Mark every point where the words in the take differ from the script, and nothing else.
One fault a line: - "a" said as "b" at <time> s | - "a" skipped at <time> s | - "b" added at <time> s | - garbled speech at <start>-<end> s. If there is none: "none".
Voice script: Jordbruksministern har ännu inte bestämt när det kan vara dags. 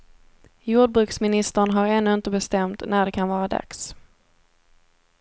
none